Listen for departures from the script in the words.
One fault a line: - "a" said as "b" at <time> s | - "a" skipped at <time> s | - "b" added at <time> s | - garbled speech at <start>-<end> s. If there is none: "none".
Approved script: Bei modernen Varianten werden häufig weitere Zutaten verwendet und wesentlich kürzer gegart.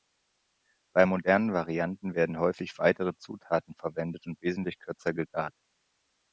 none